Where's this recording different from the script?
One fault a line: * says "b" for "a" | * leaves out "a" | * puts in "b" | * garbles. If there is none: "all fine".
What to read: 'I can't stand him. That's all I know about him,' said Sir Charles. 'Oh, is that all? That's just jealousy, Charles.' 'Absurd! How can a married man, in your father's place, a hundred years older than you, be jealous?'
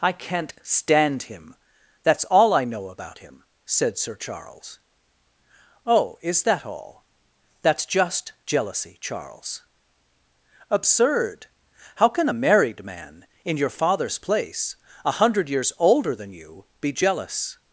all fine